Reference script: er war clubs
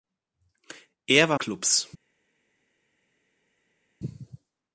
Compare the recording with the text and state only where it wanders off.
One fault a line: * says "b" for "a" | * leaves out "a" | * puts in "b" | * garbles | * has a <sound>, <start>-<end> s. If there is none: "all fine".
all fine